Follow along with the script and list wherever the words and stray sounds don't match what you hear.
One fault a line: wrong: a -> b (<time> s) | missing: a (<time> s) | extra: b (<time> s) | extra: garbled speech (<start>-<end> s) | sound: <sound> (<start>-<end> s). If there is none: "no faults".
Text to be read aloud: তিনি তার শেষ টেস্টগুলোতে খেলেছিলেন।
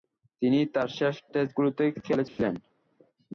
sound: dropout (2.3-2.4 s)